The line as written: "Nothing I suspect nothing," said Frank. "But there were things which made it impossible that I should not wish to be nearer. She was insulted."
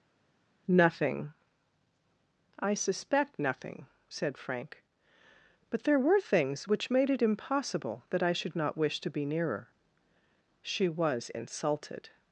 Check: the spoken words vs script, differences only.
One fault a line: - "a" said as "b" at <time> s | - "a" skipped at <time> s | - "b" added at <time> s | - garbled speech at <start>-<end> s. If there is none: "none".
none